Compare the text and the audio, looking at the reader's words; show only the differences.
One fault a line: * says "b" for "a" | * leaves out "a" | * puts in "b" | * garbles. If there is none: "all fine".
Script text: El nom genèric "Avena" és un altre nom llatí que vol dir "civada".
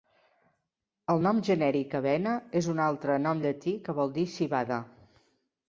all fine